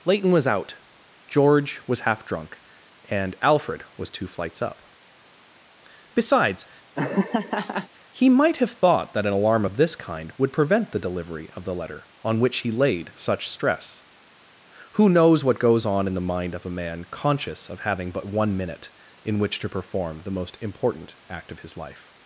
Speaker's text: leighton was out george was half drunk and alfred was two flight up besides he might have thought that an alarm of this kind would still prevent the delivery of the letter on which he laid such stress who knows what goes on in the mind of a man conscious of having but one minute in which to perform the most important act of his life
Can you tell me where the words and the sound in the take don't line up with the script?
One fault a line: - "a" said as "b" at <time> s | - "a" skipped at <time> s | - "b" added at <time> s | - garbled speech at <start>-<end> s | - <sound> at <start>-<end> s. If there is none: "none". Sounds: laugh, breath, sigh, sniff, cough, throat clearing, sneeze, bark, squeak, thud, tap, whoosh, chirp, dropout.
- "flight" said as "flights" at 4.3 s
- laugh at 7.0-7.9 s
- "still" skipped at 10.5 s